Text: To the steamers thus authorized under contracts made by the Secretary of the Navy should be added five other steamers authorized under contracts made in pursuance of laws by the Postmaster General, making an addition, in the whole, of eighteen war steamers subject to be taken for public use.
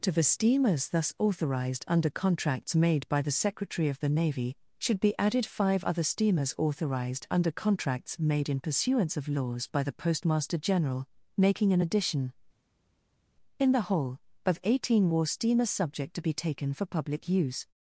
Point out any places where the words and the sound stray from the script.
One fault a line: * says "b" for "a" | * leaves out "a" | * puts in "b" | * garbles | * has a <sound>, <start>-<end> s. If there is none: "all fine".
all fine